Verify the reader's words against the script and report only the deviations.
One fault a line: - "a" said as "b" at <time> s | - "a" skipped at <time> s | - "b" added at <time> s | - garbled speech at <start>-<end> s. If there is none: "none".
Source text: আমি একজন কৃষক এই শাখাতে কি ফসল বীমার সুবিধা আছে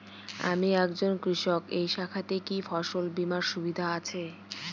none